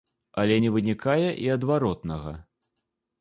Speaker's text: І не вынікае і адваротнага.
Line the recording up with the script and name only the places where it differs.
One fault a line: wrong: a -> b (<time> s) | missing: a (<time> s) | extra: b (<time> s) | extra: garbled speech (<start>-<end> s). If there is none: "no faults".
wrong: І -> Але (0.4 s)